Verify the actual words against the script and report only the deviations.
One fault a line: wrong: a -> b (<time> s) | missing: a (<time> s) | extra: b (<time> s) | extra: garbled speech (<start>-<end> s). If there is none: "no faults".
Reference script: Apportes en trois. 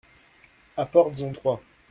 no faults